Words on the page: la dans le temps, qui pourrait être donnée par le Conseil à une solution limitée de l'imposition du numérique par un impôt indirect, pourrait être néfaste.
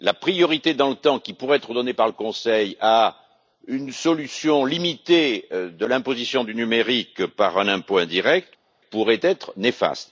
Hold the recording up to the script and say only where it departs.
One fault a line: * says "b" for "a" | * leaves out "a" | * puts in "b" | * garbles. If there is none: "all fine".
* puts in "priorité"